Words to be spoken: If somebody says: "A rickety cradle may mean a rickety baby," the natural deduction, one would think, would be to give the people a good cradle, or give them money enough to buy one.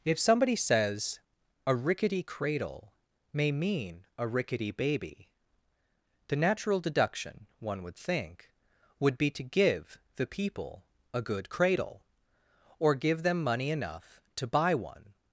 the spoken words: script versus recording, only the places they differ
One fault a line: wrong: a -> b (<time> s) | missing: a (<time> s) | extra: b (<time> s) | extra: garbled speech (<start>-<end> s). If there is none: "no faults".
no faults